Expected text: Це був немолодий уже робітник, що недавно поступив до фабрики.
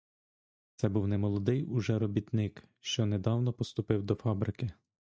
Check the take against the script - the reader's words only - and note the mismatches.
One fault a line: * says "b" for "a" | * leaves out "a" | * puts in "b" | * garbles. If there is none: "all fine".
all fine